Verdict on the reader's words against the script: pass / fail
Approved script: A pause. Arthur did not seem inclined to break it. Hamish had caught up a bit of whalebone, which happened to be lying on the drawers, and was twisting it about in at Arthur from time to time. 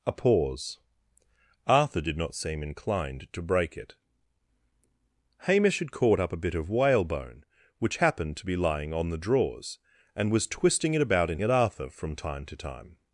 pass